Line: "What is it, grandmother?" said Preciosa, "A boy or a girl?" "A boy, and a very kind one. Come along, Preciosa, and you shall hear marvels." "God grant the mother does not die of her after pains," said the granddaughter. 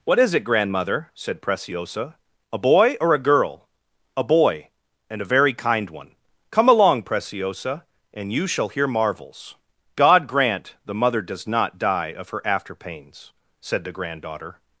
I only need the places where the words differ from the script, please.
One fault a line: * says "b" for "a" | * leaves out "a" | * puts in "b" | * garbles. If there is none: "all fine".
all fine